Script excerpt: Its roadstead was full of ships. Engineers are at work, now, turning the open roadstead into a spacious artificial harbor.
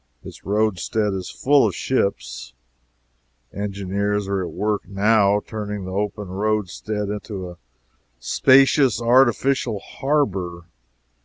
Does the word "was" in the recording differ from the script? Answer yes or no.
yes